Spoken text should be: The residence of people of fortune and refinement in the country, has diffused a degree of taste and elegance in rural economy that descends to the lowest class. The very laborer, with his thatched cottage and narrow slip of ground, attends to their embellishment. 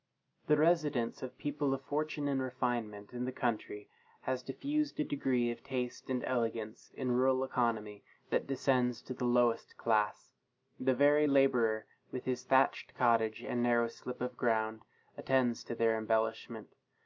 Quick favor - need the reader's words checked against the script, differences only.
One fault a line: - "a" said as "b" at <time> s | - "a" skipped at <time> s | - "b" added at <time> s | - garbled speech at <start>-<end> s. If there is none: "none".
none